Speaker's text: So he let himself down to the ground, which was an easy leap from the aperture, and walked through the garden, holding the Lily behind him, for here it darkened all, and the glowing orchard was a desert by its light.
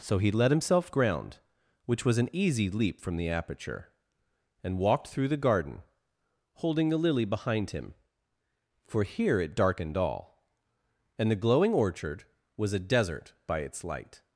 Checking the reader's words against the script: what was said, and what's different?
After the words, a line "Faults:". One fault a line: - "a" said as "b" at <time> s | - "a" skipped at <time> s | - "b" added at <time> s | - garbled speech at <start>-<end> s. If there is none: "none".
So he let himself ground, which was an easy leap from the aperture, and walked through the garden, holding the Lily behind him, for here it darkened all, and the glowing orchard was a desert by its light.
Faults:
- "down to the" skipped at 0.9 s